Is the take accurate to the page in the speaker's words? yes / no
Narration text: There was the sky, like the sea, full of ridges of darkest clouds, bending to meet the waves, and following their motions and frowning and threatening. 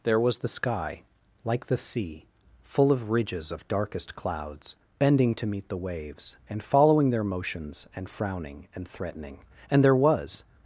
no